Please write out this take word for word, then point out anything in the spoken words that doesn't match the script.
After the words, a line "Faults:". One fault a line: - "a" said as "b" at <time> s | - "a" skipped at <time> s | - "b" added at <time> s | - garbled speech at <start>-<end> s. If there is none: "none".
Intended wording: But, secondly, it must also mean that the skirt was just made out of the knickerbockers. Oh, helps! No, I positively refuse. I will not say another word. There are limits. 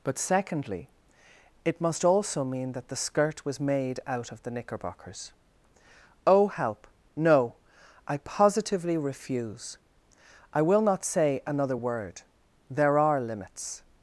But, secondly, it must also mean that the skirt was made out of the knickerbockers. Oh, help! No, I positively refuse. I will not say another word. There are limits.
Faults:
- "just" skipped at 3.6 s
- "helps" said as "help" at 6.5 s